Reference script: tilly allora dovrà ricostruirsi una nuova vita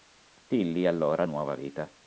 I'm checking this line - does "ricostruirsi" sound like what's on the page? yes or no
no